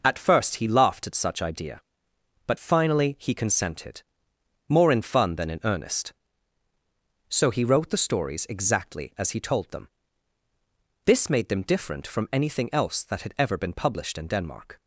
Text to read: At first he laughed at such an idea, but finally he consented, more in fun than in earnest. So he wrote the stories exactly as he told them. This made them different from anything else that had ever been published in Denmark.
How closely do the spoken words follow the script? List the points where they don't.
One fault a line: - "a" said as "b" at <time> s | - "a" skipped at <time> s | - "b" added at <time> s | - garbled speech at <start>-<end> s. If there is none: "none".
- "an" skipped at 1.4 s